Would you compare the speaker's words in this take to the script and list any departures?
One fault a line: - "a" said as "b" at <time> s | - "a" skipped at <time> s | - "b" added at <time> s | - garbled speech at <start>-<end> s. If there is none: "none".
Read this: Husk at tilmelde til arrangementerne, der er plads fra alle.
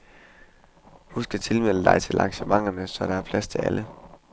- "dig" added at 1.8 s
- "så" added at 2.9 s
- "fra" said as "til" at 3.5 s